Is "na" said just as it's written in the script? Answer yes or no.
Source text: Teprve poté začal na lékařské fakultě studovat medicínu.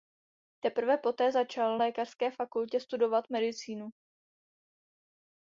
no